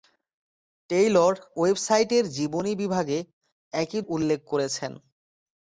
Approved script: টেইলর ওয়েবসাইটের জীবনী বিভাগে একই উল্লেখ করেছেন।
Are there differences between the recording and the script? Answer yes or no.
no